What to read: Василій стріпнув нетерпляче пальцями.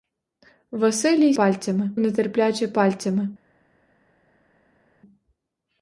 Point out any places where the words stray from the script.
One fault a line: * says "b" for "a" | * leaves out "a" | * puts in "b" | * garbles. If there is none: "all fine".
* says "пальцями" for "стріпнув"